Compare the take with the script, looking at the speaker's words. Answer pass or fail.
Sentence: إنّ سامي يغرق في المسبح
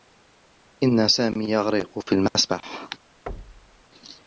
pass